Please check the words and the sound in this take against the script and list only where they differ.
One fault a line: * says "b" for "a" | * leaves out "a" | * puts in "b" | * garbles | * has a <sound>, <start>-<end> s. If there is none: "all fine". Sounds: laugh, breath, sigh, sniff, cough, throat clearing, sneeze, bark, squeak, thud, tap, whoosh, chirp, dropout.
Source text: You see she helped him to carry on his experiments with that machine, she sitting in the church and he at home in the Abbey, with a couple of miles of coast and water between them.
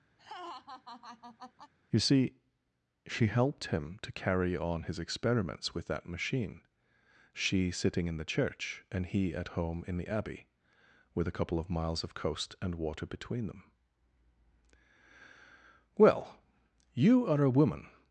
* has a laugh, 0.2-1.7 s
* puts in "Well you are a woman"